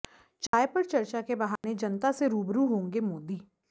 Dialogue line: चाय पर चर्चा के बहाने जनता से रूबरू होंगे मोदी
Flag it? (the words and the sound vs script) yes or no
yes